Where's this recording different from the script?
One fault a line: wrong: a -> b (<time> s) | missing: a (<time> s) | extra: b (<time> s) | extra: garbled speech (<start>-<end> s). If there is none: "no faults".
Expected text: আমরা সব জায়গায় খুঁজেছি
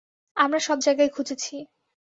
no faults